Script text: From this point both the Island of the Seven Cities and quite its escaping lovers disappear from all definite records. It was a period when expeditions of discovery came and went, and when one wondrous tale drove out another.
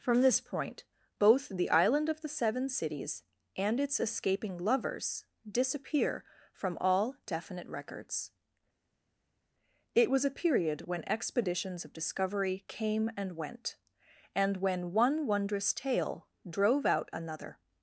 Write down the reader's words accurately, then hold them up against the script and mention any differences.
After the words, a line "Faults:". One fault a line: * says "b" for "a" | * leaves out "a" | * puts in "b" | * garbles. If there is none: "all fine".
From this point both the Island of the Seven Cities and its escaping lovers disappear from all definite records. It was a period when expeditions of discovery came and went, and when one wondrous tale drove out another.
Faults:
* leaves out "quite"